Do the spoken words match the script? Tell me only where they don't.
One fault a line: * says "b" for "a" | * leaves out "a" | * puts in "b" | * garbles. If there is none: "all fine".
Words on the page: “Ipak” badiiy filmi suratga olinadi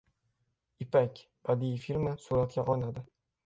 all fine